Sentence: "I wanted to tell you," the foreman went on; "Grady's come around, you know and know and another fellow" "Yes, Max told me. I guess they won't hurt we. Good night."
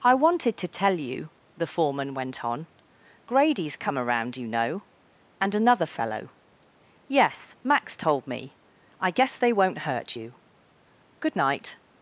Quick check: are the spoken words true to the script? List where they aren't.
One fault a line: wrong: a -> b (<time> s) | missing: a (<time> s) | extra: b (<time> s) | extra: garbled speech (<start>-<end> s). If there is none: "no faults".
missing: know and (5.5 s)
wrong: we -> you (10.2 s)